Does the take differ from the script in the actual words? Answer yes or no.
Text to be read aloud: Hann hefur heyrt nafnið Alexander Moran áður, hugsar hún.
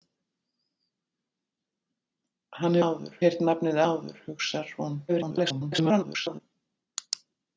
yes